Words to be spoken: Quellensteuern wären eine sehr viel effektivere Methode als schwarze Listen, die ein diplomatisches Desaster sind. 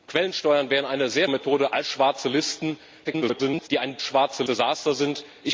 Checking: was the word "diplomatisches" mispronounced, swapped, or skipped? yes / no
yes